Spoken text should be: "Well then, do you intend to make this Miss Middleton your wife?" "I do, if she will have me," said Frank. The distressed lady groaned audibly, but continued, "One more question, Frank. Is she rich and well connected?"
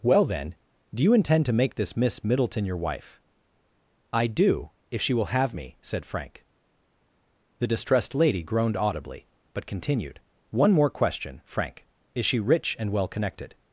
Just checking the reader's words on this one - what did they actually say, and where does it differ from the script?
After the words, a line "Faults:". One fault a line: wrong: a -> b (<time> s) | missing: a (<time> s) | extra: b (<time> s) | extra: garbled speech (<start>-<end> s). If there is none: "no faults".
"Well then, do you intend to make this Miss Middleton your wife?" "I do, if she will have me," said Frank. The distressed lady groaned audibly, but continued, "One more question, Frank. Is she rich and well connected?"
Faults:
no faults